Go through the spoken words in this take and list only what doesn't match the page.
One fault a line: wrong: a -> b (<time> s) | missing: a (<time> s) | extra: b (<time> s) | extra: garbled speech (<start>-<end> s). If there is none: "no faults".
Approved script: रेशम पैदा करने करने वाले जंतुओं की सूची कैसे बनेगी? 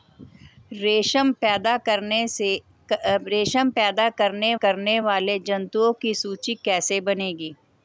no faults